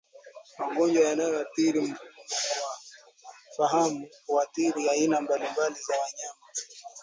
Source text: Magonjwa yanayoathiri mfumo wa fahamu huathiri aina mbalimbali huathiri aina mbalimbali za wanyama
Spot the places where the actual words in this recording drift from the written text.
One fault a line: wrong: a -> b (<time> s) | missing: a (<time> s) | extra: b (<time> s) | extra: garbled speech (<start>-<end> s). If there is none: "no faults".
missing: huathiri aina mbalimbali (5.7 s)